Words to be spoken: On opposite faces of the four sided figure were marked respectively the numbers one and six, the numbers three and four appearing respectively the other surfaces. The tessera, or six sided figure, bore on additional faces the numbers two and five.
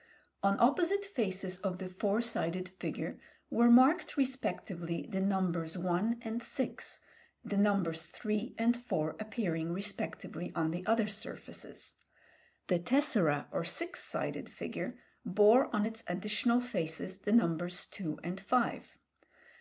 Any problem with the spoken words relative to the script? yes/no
yes